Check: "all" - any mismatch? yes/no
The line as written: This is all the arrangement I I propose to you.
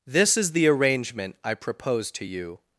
yes